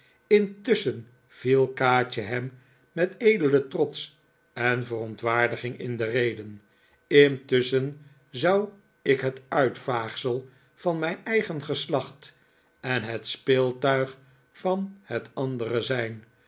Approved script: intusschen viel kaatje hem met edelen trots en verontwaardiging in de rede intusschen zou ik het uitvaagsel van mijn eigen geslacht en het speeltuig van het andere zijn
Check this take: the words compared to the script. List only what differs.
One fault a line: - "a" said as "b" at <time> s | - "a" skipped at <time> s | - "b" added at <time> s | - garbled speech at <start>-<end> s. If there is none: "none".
none